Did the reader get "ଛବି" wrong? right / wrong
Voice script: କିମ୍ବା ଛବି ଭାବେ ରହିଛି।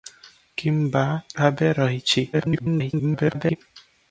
wrong